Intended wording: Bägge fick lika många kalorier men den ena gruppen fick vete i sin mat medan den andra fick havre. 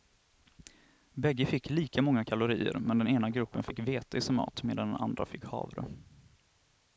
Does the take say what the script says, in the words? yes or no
yes